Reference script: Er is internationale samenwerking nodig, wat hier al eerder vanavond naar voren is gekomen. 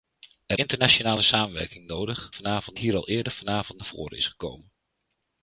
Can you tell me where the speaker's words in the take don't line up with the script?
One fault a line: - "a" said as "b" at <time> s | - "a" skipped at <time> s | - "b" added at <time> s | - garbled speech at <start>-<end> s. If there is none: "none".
- "is" skipped at 0.6 s
- "wat" said as "vanavond" at 2.3 s